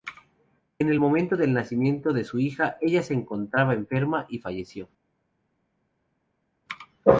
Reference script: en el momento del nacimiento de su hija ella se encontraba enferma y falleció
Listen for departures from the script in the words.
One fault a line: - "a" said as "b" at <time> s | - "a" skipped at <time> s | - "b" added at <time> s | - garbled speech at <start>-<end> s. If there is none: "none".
none